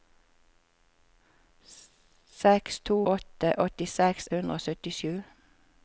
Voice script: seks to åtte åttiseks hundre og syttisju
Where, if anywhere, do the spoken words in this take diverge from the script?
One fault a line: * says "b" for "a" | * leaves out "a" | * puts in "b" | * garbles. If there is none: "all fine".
all fine